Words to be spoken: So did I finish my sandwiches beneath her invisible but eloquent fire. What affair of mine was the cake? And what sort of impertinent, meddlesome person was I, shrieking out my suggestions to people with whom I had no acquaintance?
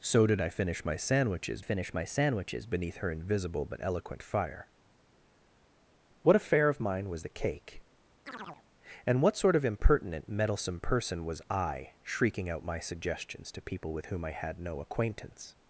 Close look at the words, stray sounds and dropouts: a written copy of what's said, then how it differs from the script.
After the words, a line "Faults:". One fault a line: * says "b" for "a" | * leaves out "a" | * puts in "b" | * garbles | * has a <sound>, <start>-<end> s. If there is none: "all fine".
So did I finish my sandwiches finish my sandwiches beneath her invisible but eloquent fire. What affair of mine was the cake? And what sort of impertinent, meddlesome person was I, shrieking out my suggestions to people with whom I had no acquaintance?
Faults:
* puts in "finish my sandwiches"
* has a chirp, 8.3-8.6 s